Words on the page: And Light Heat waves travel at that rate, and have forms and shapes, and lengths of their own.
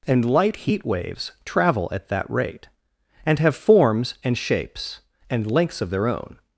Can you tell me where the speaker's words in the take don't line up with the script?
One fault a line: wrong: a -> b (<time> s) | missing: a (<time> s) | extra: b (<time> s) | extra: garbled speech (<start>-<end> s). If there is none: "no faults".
no faults